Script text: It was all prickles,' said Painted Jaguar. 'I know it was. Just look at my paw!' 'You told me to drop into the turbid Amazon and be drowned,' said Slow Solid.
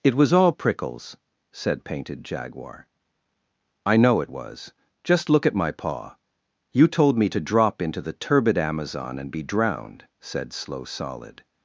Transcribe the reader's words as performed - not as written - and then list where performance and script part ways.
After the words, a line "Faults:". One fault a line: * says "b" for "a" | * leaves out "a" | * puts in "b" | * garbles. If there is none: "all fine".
It was all prickles,' said Painted Jaguar. 'I know it was. Just look at my paw!' 'You told me to drop into the turbid Amazon and be drowned,' said Slow Solid.
Faults:
all fine